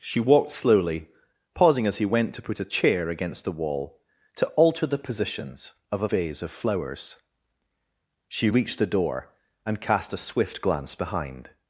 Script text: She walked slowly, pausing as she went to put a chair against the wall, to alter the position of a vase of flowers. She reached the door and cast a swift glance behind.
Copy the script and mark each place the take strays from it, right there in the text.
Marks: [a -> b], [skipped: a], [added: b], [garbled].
She walked slowly, pausing as [she -> he] went to put a chair against the wall, to alter the [position -> positions] of a vase of flowers. She reached the door and cast a swift glance behind.